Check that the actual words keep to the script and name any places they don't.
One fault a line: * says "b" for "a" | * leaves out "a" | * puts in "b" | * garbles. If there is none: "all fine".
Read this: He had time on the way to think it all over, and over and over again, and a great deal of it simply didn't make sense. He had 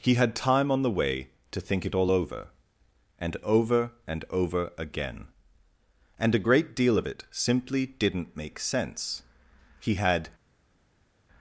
all fine